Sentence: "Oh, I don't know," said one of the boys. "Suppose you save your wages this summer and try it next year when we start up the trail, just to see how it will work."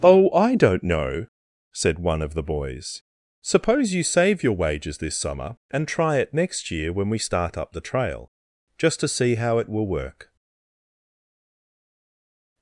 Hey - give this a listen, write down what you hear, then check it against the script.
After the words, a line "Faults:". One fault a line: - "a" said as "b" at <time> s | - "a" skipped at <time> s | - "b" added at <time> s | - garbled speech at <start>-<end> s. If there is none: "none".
"Oh, I don't know," said one of the boys. "Suppose you save your wages this summer and try it next year when we start up the trail, just to see how it will work."
Faults:
none